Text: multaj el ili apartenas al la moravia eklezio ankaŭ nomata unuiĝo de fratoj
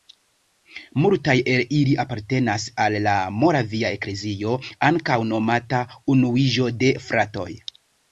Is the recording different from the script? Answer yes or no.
no